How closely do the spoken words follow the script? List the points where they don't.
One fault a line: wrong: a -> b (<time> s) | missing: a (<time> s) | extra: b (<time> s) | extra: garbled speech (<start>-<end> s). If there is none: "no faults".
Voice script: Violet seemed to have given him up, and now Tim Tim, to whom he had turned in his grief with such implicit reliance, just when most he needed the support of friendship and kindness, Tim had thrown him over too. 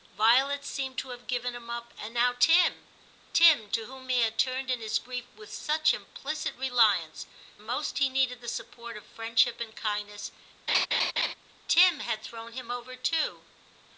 missing: just when (7.3 s)